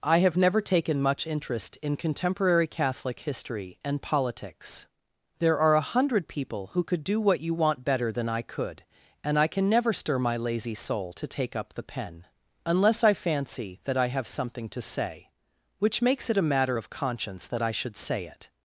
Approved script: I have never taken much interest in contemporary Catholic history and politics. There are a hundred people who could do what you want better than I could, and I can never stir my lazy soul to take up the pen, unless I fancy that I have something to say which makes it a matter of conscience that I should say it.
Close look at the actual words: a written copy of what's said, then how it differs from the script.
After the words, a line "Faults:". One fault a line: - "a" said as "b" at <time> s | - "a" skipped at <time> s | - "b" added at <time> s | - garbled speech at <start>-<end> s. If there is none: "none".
I have never taken much interest in contemporary Catholic history and politics. There are a hundred people who could do what you want better than I could, and I can never stir my lazy soul to take up the pen, unless I fancy that I have something to say which makes it a matter of conscience that I should say it.
Faults:
none